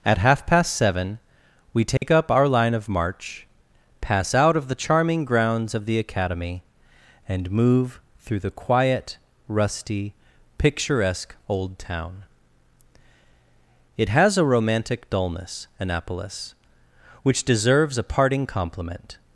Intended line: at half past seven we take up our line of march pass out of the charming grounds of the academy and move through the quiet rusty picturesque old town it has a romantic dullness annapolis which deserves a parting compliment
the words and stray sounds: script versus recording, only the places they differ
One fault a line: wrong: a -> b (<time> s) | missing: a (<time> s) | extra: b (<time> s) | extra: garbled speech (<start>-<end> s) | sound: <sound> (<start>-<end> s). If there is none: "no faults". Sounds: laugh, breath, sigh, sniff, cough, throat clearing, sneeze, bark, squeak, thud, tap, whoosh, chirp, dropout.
sound: dropout (2.0-2.0 s)